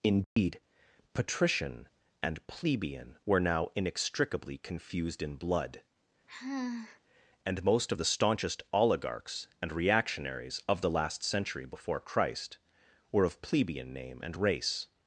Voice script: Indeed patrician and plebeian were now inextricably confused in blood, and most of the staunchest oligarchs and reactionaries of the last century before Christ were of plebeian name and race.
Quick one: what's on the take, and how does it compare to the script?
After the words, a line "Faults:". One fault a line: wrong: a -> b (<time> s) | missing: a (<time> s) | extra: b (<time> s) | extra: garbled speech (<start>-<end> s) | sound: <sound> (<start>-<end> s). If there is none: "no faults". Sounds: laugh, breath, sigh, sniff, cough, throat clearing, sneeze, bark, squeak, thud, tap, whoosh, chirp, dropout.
Indeed patrician and plebeian were now inextricably confused in blood, and most of the staunchest oligarchs and reactionaries of the last century before Christ were of plebeian name and race.
Faults:
sound: dropout (0.2-0.4 s)
sound: sigh (6.3-7.0 s)